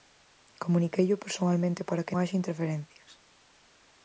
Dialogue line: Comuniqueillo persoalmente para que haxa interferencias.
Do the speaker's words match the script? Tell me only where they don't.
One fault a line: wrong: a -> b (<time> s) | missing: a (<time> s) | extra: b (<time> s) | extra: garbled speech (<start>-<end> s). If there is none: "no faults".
no faults